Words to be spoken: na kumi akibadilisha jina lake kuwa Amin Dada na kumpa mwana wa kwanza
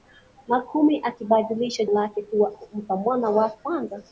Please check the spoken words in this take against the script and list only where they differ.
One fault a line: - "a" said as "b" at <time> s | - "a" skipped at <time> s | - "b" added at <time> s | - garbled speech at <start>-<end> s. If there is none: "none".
- "jina" skipped at 1.9 s
- "Amin Dada na" skipped at 2.5 s